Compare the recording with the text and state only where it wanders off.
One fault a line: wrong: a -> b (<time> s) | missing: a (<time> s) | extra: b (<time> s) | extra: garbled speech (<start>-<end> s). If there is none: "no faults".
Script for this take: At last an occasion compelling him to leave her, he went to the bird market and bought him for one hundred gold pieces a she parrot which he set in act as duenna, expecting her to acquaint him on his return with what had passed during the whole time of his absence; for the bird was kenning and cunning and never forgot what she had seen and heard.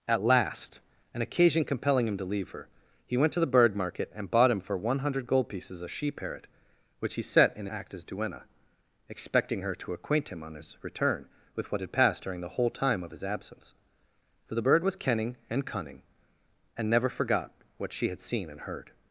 no faults